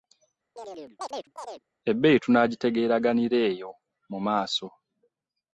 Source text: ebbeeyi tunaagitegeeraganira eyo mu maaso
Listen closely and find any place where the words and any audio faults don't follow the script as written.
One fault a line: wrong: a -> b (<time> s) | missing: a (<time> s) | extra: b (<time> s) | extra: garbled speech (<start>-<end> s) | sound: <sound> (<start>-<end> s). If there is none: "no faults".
sound: chirp (0.6-1.6 s)